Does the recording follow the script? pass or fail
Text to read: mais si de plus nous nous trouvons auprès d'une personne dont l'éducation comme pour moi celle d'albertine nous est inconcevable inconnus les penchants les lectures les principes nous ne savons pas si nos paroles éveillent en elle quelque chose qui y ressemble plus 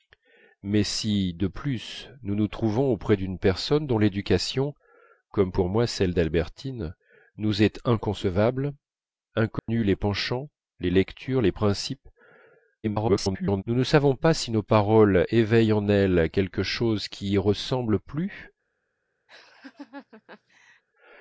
fail